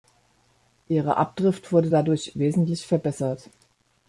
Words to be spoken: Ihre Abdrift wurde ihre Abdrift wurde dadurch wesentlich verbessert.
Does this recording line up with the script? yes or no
no